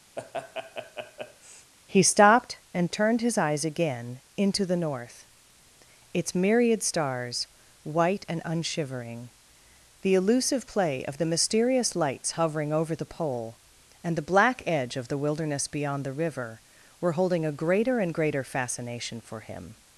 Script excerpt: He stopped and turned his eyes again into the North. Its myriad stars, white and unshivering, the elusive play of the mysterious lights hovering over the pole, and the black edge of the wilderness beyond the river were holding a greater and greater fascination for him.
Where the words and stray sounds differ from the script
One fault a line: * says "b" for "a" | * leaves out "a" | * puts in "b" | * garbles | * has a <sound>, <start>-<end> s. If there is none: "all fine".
* has a laugh, 0.2-1.7 s